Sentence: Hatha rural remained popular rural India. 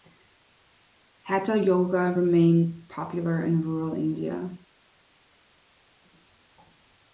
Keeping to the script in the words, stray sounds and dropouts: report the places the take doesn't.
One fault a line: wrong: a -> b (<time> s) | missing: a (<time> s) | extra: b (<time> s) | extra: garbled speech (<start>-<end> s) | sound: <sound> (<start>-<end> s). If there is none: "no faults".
wrong: rural -> yoga (1.6 s)
extra: in (3.4 s)